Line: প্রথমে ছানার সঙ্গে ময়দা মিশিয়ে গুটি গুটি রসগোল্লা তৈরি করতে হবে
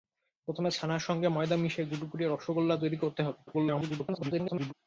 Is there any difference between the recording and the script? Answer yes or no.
yes